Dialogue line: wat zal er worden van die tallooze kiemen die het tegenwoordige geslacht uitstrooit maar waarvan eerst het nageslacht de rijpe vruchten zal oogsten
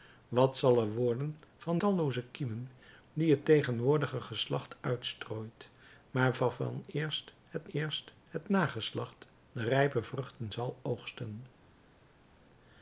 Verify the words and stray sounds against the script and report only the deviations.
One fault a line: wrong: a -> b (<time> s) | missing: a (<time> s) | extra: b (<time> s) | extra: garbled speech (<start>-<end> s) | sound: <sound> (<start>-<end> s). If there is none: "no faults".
missing: die (1.8 s)
extra: eerst het (7.7 s)